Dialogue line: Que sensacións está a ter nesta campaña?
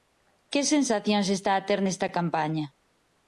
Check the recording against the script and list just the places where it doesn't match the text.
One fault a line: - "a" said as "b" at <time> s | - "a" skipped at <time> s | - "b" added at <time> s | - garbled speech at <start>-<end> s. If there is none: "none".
none